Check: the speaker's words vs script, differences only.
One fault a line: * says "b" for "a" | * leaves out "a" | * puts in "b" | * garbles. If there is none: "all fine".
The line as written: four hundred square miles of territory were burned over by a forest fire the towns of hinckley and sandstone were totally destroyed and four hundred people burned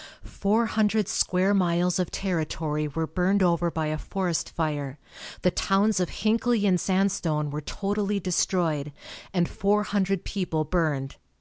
all fine